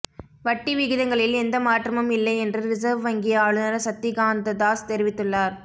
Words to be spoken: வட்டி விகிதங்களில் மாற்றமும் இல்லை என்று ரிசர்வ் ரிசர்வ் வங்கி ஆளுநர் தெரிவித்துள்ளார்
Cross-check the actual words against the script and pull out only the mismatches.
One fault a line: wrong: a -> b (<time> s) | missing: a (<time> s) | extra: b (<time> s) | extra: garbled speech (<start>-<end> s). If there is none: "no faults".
extra: எந்த (1.4 s)
missing: ரிசர்வ் (3.0 s)
extra: சக்திகாந்ததாஸ் (3.8 s)